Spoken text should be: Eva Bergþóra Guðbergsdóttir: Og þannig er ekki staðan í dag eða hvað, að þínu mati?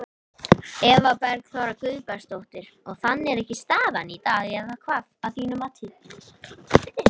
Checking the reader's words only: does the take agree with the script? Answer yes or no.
yes